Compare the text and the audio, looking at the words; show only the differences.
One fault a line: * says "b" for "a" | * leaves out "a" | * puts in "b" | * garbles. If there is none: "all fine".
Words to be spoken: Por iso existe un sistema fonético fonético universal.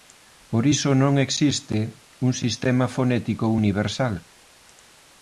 * puts in "non"
* leaves out "fonético"